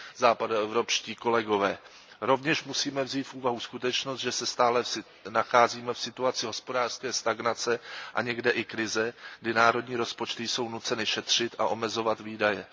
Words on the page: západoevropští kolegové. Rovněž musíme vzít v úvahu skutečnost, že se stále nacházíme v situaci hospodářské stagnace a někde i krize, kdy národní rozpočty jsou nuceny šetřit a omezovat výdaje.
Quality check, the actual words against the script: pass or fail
pass